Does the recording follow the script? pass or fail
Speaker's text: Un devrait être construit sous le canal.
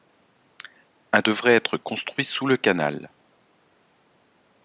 pass